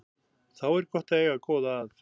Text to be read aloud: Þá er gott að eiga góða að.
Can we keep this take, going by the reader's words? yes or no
yes